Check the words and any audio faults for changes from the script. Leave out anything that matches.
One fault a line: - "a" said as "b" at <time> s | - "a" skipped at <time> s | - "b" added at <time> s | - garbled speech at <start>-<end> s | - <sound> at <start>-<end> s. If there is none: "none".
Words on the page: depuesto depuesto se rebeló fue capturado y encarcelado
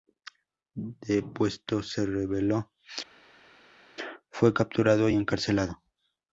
- "depuesto" skipped at 1.8 s